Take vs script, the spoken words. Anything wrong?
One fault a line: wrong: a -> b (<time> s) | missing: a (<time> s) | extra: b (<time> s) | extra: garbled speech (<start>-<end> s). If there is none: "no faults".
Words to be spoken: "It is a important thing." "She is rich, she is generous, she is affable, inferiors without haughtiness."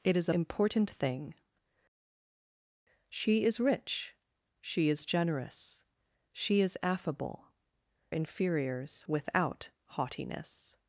no faults